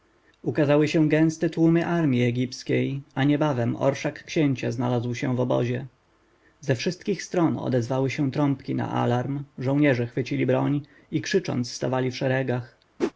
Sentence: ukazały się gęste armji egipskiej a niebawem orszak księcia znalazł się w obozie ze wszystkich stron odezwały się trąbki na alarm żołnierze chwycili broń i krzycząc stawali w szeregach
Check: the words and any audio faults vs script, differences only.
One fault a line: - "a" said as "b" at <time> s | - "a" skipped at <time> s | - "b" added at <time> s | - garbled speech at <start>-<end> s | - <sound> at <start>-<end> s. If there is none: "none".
- "tłumy" added at 1.5 s
- whoosh at 13.0-13.1 s